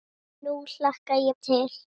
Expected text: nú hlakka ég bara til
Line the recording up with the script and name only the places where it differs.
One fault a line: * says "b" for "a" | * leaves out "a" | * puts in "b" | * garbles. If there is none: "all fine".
* leaves out "bara"